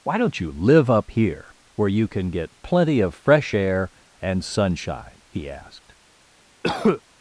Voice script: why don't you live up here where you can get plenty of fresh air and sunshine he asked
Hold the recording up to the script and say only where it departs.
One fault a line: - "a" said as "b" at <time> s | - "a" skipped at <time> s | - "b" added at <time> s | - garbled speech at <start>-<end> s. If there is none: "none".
none